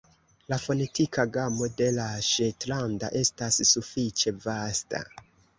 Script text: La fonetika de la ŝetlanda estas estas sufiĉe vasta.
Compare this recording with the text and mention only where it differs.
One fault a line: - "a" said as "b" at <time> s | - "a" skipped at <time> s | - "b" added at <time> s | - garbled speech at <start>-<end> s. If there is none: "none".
- "gamo" added at 1.4 s
- "estas" skipped at 3.6 s